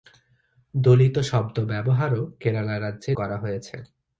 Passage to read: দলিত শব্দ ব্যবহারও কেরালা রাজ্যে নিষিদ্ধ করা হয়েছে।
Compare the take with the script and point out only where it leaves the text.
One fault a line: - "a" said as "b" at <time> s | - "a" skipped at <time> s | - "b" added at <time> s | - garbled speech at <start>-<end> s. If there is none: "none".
- "নিষিদ্ধ" skipped at 3.1 s